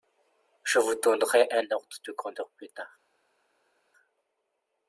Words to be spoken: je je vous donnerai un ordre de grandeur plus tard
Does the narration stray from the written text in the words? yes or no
yes